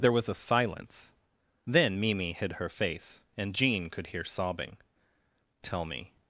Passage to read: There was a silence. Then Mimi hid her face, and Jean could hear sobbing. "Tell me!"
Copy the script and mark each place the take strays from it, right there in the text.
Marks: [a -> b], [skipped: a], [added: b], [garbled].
There was a silence. Then Mimi hid her face, and Jean could hear sobbing. "Tell me!"